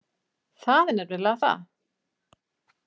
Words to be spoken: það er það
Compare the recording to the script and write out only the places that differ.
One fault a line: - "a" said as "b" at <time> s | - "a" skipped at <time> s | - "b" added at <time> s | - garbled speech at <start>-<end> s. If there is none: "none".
- "nefnilega" added at 1.0 s